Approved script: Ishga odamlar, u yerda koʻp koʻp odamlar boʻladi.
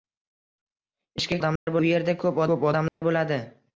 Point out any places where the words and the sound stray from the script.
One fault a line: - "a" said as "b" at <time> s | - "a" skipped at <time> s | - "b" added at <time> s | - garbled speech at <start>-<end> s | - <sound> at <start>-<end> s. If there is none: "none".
- dropout at 1.6-1.7 s
- dropout at 2.9-3.0 s